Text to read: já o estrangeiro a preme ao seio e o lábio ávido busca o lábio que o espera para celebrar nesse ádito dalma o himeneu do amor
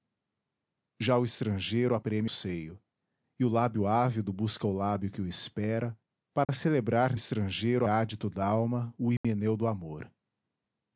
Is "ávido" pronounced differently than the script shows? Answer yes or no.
no